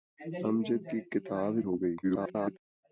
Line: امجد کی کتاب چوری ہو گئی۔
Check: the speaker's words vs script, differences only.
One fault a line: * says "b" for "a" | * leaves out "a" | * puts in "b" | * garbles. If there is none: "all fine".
* leaves out "چوری"
* garbles